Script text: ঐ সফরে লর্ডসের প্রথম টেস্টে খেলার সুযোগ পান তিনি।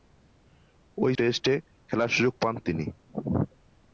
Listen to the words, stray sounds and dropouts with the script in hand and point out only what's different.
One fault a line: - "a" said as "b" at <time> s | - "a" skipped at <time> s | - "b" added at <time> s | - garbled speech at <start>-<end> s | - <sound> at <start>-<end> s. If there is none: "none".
- "সফরে লর্ডসের প্রথম" skipped at 1.1 s